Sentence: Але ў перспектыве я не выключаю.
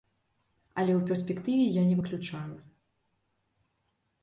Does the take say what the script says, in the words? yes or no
yes